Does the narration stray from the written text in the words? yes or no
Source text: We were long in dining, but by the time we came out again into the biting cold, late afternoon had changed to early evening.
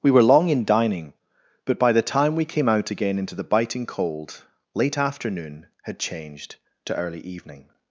no